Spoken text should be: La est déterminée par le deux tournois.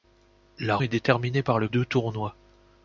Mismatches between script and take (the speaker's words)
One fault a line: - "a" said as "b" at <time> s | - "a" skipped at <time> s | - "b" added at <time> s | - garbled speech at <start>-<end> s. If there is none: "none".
none